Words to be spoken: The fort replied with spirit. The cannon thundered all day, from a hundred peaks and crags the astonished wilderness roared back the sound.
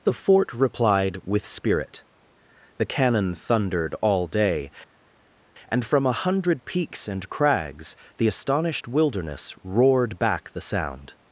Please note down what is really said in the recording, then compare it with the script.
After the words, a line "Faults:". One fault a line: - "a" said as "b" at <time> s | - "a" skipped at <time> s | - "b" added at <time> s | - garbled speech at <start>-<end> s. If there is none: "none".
The fort replied with spirit. The cannon thundered all day, and from a hundred peaks and crags the astonished wilderness roared back the sound.
Faults:
- "and" added at 5.7 s